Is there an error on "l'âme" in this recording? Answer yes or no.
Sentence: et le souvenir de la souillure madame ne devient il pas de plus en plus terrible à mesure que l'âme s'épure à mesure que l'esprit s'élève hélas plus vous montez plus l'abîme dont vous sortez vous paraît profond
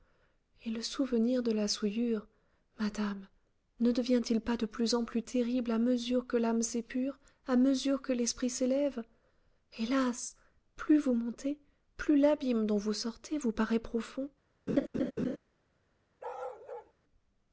no